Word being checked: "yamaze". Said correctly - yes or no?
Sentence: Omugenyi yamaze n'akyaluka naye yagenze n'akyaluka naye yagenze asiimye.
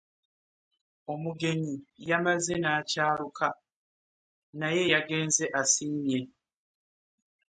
yes